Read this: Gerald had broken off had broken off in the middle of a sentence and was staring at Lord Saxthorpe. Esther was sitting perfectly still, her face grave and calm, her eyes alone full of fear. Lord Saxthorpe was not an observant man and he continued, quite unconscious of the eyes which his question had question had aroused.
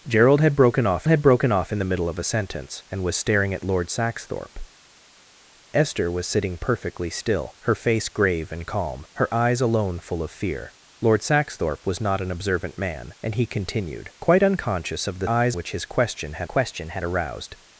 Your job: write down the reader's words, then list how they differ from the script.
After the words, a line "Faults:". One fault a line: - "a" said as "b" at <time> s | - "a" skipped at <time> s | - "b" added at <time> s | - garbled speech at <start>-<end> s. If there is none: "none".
Gerald had broken off had broken off in the middle of a sentence and was staring at Lord Saxthorpe. Esther was sitting perfectly still, her face grave and calm, her eyes alone full of fear. Lord Saxthorpe was not an observant man and he continued, quite unconscious of the eyes which his question had question had aroused.
Faults:
none